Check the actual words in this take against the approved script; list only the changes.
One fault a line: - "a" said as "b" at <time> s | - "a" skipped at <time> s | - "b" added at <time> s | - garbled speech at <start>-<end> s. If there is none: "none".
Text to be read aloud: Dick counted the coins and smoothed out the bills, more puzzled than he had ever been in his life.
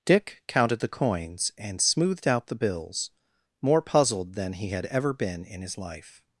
none